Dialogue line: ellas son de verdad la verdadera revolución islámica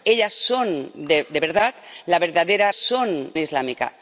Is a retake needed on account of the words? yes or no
yes